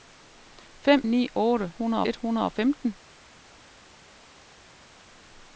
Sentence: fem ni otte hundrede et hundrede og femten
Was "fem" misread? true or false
false